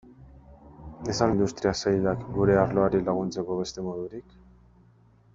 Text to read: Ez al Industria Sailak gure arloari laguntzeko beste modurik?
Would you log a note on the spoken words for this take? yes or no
no